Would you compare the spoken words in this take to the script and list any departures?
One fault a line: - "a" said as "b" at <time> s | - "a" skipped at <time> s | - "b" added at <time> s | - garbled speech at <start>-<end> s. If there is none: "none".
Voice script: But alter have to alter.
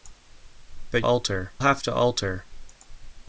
none